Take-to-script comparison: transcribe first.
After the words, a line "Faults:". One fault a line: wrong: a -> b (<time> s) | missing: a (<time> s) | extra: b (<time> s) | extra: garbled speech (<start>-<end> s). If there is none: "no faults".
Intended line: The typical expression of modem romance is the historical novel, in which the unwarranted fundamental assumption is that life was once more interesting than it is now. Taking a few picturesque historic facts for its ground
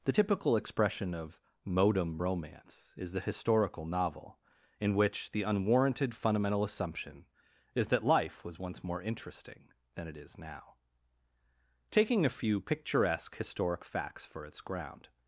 The typical expression of modem romance is the historical novel, in which the unwarranted fundamental assumption is that life was once more interesting than it is now. Taking a few picturesque historic facts for its ground
Faults:
no faults